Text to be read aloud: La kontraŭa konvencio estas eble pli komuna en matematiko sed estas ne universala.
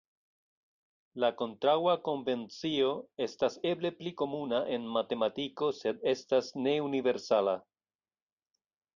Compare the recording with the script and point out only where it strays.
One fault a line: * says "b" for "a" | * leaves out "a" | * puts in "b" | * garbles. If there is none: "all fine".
all fine